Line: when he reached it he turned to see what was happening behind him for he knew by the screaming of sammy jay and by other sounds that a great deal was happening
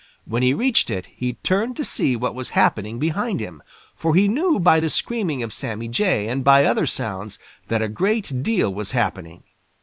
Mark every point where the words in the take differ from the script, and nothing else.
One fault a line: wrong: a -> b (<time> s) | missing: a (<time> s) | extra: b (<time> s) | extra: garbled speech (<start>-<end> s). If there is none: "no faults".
no faults